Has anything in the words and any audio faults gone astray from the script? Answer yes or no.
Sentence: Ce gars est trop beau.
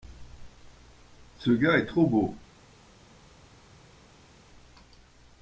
no